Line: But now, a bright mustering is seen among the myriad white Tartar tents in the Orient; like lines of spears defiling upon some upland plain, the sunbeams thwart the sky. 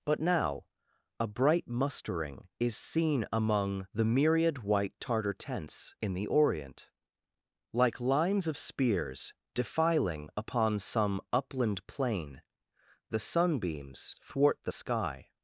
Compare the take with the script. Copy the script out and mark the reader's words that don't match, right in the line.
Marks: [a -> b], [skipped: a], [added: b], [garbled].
But now, a bright mustering is seen among the myriad white Tartar tents in the Orient; like lines of spears defiling upon some upland plain, the sunbeams thwart the sky.